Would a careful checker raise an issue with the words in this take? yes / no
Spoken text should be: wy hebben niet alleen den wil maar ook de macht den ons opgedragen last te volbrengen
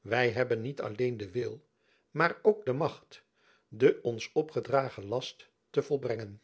no